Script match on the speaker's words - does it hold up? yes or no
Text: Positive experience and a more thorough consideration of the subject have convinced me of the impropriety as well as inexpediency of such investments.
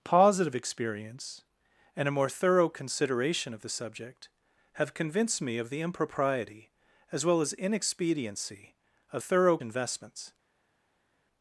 no